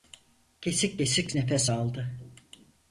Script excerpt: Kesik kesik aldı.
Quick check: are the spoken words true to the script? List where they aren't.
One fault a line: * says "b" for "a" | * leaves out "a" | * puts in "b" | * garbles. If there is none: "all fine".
* puts in "nefes"